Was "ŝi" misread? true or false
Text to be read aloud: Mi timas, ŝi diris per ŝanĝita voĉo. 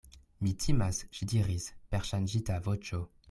false